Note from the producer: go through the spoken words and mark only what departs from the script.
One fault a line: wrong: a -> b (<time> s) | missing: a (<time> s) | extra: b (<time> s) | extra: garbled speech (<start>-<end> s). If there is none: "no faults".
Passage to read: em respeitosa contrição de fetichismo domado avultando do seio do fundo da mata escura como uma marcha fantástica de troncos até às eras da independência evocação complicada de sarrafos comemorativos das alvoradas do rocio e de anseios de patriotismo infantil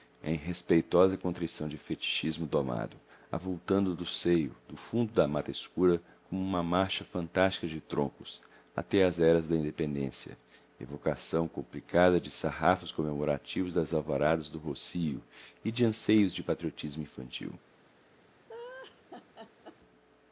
no faults